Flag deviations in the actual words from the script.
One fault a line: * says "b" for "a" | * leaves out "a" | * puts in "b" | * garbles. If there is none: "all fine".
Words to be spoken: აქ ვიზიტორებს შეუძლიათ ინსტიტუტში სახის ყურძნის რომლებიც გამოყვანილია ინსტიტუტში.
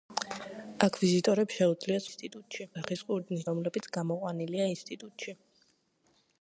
all fine